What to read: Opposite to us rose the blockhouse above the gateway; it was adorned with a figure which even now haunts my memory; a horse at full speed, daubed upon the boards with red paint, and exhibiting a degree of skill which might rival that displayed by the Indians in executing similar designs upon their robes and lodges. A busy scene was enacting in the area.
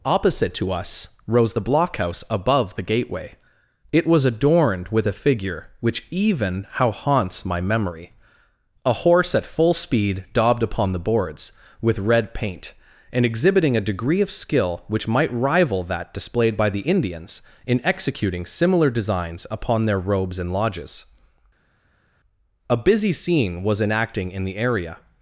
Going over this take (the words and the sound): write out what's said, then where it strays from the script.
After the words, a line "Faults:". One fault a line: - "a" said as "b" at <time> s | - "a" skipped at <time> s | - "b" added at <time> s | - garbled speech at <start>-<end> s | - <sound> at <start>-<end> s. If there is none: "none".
Opposite to us rose the blockhouse above the gateway; it was adorned with a figure which even how haunts my memory; a horse at full speed, daubed upon the boards with red paint, and exhibiting a degree of skill which might rival that displayed by the Indians in executing similar designs upon their robes and lodges. A busy scene was enacting in the area.
Faults:
- "now" said as "how" at 6.7 s